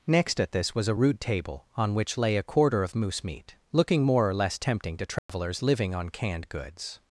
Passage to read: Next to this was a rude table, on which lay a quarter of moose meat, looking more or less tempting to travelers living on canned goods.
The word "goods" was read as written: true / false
true